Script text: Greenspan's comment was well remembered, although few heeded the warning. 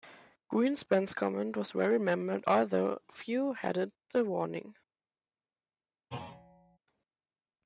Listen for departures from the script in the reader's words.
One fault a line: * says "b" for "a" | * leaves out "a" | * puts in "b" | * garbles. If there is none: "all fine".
all fine